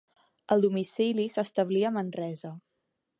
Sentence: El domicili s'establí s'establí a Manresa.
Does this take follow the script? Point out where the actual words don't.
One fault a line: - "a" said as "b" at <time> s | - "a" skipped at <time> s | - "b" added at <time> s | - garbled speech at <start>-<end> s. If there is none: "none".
- "s'establí" skipped at 1.9 s